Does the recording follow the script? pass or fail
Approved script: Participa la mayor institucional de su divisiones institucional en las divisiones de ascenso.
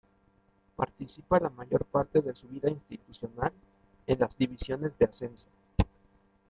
fail